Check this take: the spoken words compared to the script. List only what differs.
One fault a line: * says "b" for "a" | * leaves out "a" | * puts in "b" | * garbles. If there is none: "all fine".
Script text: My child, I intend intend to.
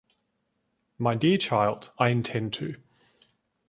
* puts in "dear"
* leaves out "intend"